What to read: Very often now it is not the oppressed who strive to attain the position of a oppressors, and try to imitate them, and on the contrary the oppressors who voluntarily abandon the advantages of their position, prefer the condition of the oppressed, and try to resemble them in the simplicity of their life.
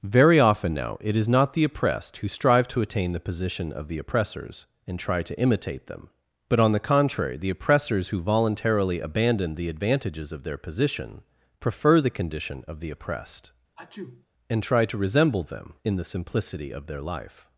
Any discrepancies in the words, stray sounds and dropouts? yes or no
yes